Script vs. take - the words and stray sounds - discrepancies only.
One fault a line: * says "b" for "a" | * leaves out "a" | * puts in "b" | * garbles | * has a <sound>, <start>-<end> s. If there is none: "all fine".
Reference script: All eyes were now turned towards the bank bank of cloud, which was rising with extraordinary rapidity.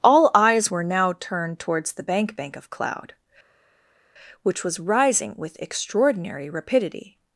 all fine